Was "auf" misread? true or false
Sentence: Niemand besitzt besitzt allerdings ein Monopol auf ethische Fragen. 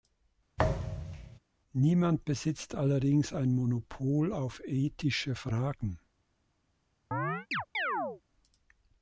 false